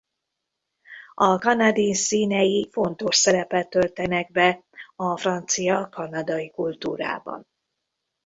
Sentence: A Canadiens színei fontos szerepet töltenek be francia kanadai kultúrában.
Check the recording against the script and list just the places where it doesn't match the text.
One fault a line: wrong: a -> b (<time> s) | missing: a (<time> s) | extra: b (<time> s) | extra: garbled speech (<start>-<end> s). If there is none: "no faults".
extra: a (5.0 s)